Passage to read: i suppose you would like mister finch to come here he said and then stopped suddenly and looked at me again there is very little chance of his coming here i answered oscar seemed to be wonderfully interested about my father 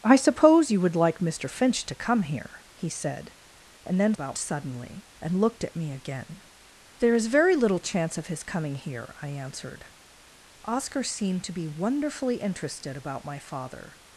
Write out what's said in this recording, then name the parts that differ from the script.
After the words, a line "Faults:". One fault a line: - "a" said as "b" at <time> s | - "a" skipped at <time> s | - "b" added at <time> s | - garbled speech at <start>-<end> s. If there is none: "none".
i suppose you would like mister finch to come here he said and then about suddenly and looked at me again there is very little chance of his coming here i answered oscar seemed to be wonderfully interested about my father
Faults:
- "stopped" said as "about" at 4.1 s